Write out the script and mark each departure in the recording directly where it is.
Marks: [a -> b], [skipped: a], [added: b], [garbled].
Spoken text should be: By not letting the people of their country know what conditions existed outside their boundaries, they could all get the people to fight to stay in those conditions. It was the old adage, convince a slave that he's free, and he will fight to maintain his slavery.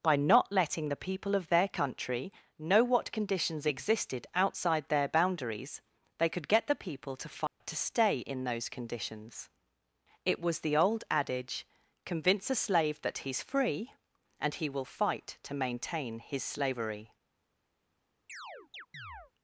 By not letting the people of their country know what conditions existed outside their boundaries, they could [skipped: all] get the people to fight to stay in those conditions. It was the old adage, convince a slave that he's free, and he will fight to maintain his slavery.